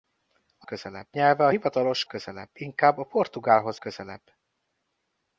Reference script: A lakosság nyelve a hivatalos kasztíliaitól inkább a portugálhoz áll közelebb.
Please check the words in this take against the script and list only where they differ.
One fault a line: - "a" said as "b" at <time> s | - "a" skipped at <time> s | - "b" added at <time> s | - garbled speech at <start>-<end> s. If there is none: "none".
- "lakosság" said as "közelebb" at 0.6 s
- "kasztíliaitól" said as "közelebb" at 2.0 s
- "áll" skipped at 3.8 s